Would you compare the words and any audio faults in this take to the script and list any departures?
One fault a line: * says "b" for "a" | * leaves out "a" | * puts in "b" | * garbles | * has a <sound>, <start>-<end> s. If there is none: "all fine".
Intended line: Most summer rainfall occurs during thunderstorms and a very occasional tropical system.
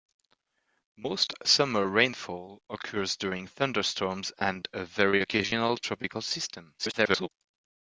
* garbles